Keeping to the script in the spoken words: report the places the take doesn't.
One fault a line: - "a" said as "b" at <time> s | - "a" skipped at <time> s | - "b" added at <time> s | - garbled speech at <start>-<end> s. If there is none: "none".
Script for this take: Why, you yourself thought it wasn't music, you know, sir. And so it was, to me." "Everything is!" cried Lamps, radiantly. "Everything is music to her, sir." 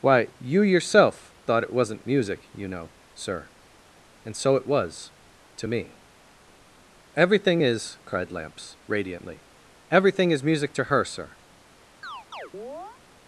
none